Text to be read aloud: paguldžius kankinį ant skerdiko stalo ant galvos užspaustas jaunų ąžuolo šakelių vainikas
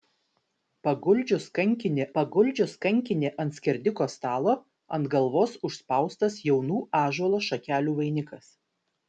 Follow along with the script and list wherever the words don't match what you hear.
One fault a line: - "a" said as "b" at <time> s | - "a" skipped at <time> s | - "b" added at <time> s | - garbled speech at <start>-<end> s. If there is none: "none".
- "paguldžius kankinį" added at 2.2 s